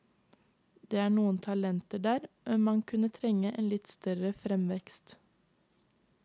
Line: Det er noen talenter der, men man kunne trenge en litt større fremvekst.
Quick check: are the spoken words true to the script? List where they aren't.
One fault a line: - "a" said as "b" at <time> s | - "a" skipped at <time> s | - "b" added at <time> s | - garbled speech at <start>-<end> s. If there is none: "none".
none